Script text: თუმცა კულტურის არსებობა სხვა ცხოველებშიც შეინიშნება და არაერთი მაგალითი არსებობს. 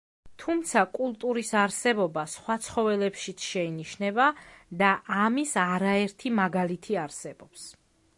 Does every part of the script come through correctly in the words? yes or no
no